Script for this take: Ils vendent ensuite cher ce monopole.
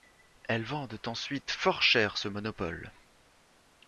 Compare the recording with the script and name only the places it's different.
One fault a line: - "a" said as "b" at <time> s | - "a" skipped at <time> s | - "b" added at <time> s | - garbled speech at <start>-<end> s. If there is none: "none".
- "Ils" said as "Elles" at 0.5 s
- "fort" added at 1.5 s